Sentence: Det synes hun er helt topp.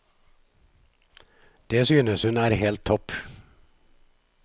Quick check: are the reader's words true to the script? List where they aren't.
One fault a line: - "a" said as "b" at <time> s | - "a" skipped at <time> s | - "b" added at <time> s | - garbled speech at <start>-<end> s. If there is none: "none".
none